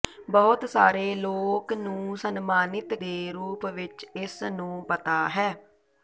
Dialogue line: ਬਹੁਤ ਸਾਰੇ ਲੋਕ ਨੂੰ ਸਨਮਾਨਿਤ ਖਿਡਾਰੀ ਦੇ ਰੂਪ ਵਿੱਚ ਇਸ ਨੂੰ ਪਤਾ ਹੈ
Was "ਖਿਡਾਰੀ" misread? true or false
true